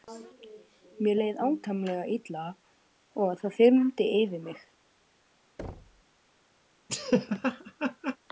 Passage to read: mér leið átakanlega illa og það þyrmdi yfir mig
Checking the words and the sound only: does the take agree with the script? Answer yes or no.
no